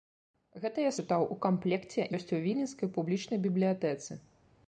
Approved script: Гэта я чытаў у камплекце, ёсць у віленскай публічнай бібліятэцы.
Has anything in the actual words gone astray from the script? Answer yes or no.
no